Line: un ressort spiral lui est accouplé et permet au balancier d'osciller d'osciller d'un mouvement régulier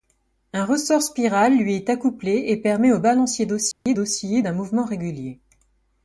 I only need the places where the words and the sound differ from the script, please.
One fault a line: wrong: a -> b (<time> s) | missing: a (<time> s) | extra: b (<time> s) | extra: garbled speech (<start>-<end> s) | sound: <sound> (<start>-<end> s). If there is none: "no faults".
sound: dropout (3.7-3.9 s)